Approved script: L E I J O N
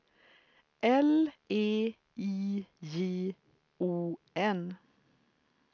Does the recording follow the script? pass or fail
pass